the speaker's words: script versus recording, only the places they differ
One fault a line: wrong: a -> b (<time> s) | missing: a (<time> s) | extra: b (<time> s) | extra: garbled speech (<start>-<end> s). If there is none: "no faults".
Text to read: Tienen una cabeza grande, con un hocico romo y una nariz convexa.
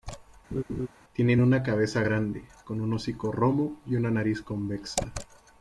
no faults